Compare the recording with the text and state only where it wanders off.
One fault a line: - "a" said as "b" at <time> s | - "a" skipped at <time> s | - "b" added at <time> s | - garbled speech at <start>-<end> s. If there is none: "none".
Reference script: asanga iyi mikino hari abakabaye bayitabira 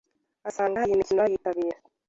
- "hari abakabaye" skipped at 1.2 s